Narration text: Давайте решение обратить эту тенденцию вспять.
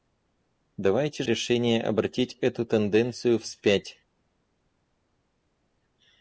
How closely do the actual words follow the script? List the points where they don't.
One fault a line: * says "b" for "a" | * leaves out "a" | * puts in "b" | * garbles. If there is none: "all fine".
all fine